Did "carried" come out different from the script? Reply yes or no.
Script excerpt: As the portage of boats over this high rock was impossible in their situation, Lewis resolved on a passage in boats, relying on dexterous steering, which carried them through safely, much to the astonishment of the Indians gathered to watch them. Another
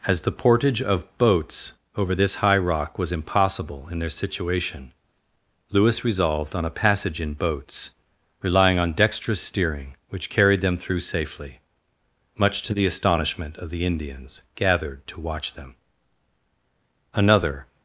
no